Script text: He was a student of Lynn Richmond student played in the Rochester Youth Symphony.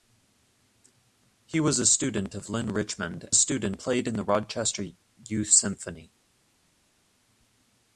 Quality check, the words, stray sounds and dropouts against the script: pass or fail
pass